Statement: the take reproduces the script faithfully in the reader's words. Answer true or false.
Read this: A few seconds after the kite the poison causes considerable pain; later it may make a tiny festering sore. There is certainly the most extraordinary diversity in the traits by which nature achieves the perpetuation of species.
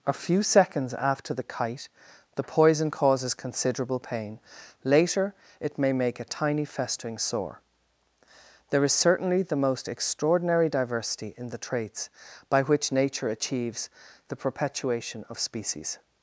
true